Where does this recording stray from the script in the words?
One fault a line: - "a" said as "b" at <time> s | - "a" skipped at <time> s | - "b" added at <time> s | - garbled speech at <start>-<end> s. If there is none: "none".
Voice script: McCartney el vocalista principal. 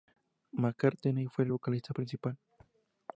- "fue" added at 1.3 s